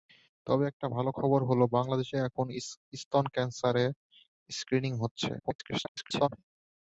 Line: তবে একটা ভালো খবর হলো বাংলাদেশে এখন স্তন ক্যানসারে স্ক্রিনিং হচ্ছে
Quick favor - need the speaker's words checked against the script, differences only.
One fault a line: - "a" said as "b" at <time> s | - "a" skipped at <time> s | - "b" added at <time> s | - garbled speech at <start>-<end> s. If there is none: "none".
- garbled speech at 5.4-6.3 s